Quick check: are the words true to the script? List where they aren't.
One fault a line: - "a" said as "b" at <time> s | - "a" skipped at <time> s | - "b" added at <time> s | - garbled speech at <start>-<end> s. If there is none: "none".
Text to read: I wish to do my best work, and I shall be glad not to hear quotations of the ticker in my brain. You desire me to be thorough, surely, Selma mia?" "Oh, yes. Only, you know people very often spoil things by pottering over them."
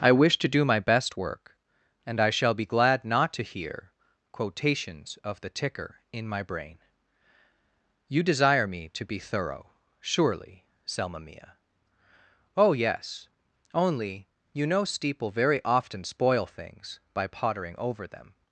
- "people" said as "steeple" at 14.8 s